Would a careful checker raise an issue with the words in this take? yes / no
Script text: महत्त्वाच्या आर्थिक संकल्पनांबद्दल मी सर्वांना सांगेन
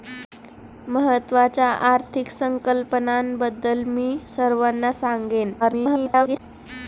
yes